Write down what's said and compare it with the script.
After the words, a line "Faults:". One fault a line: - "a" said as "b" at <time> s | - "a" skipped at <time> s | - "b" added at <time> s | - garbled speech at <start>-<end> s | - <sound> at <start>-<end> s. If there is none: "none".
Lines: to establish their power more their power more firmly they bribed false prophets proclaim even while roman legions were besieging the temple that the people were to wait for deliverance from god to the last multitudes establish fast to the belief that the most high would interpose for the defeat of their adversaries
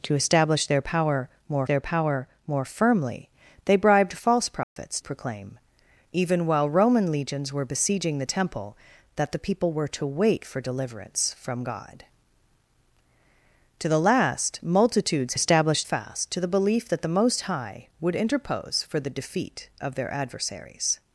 to establish their power more their power more firmly they bribed false prophets proclaim even while roman legions were besieging the temple that the people were to wait for deliverance from god to the last multitudes establish fast to the belief that the most high would interpose for the defeat of their adversaries
Faults:
- dropout at 4.6-4.8 s